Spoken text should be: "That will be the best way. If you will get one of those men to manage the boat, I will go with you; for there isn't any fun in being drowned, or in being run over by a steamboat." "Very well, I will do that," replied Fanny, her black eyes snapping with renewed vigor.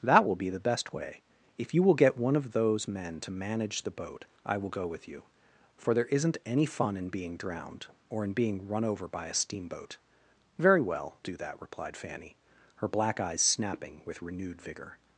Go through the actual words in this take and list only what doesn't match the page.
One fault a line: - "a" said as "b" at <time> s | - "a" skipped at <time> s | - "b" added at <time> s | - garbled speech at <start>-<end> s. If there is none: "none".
- "I will" skipped at 11.2 s